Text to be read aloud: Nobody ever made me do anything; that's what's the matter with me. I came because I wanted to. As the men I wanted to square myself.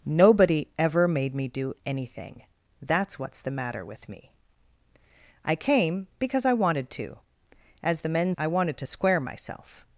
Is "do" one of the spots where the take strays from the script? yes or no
no